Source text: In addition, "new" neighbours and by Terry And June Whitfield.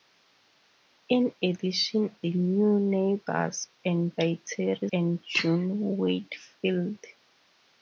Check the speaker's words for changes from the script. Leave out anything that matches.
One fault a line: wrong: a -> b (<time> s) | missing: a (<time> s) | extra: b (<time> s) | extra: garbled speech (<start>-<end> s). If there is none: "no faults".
no faults